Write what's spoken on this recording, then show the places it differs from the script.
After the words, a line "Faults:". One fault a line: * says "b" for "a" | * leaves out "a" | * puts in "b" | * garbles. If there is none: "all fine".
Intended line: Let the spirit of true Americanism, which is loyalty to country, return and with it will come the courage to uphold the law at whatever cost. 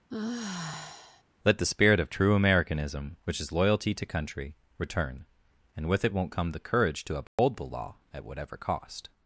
Let the spirit of true Americanism, which is loyalty to country, return and with it won't come the courage to uphold the law at whatever cost.
Faults:
* says "won't" for "will"